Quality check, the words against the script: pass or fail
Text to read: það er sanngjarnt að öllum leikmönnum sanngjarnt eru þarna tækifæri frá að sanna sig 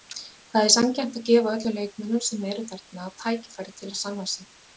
fail